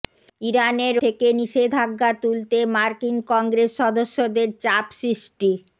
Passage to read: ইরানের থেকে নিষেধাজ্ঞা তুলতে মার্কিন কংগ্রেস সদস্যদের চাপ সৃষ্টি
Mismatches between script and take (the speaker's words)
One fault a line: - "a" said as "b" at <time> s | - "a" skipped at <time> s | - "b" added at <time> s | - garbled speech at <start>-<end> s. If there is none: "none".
none